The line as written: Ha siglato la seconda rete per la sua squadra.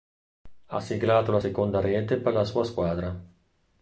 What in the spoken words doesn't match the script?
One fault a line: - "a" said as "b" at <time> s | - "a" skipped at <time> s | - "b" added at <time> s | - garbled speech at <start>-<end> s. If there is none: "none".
none